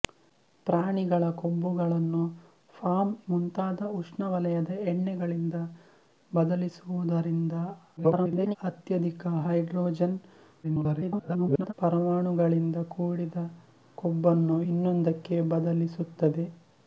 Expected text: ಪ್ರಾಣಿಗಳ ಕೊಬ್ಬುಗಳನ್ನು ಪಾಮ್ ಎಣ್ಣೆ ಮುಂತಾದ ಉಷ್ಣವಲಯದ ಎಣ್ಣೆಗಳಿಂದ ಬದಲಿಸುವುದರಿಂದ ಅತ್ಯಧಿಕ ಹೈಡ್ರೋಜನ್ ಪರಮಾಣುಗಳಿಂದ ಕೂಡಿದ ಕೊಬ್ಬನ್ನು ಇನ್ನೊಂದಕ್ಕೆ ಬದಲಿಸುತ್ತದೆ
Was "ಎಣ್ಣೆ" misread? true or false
true